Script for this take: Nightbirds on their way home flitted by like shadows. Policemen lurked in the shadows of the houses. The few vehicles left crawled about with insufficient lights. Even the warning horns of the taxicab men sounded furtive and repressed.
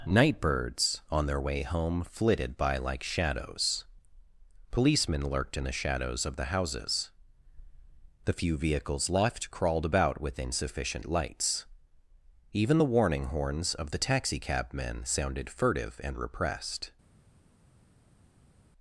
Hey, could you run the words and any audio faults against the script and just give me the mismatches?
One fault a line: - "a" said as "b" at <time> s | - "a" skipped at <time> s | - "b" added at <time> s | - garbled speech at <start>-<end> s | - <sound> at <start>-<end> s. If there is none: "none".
none